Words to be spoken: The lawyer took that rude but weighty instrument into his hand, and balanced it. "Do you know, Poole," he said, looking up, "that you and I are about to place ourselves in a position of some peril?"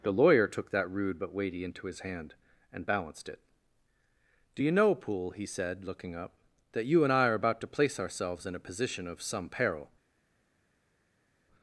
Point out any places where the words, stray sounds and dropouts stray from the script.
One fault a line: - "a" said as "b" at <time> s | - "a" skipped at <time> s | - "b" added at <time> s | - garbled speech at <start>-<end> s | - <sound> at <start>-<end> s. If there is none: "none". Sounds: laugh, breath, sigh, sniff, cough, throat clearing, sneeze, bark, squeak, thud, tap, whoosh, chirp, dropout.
- "instrument" skipped at 1.6 s